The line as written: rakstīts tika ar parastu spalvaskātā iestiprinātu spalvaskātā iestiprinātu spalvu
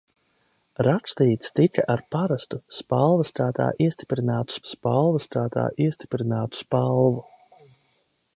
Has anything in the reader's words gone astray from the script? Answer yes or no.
no